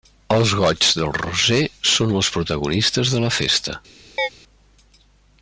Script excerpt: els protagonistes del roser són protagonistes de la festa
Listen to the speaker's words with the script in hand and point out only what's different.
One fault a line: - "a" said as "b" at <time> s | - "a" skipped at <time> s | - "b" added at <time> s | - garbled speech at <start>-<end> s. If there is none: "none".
- "protagonistes" said as "goigs" at 0.6 s
- "els" added at 2.2 s